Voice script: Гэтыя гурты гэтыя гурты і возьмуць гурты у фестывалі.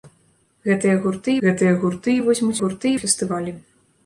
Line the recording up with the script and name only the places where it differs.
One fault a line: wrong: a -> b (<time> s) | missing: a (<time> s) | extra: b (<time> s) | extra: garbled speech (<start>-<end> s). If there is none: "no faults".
no faults